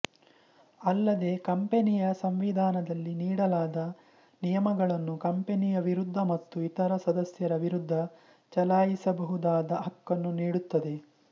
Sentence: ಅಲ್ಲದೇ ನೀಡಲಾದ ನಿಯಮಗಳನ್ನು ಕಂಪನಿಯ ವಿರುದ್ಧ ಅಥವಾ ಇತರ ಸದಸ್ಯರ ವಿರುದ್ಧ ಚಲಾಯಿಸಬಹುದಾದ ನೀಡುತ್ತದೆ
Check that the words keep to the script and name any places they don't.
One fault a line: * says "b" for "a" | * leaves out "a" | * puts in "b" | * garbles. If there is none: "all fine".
* puts in "ಕಂಪನಿಯ ಸಂವಿಧಾನದಲ್ಲಿ"
* says "ಮತ್ತು" for "ಅಥವಾ"
* puts in "ಹಕ್ಕನ್ನು"